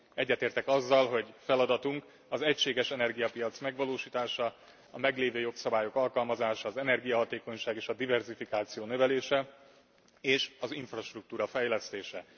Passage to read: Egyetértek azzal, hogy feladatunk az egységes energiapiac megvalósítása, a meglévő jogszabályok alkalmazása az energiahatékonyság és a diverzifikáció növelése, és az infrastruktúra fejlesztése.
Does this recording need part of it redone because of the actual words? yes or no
no